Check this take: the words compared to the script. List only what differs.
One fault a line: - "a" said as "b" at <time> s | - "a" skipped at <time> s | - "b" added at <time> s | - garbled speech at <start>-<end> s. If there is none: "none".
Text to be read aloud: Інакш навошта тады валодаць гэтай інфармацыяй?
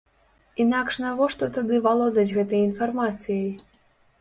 none